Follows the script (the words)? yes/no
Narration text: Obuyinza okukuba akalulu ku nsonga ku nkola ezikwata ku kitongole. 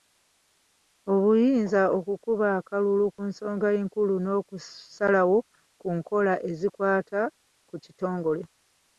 no